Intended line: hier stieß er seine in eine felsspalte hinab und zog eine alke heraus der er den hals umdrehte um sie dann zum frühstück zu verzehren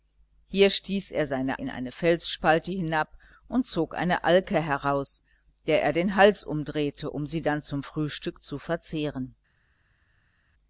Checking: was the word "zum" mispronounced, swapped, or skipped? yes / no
no